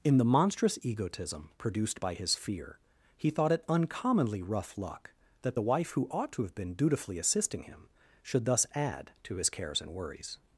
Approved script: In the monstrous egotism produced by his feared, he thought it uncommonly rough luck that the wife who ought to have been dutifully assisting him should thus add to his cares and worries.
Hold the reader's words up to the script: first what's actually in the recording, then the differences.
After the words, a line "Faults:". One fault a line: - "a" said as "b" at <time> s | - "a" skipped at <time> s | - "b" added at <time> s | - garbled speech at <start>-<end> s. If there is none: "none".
In the monstrous egotism produced by his fear, he thought it uncommonly rough luck that the wife who ought to have been dutifully assisting him should thus add to his cares and worries.
Faults:
- "feared" said as "fear" at 2.4 s